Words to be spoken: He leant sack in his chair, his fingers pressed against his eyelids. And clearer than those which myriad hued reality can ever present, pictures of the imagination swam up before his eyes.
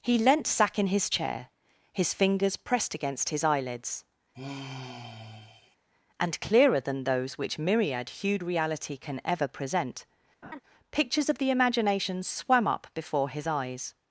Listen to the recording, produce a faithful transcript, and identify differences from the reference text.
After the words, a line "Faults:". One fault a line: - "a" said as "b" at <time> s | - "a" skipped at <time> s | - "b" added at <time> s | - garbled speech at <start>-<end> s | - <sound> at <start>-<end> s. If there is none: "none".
He leant sack in his chair, his fingers pressed against his eyelids. And clearer than those which myriad hued reality can ever present, pictures of the imagination swam up before his eyes.
Faults:
- sigh at 4.3-5.8 s
- laugh at 10.4-10.6 s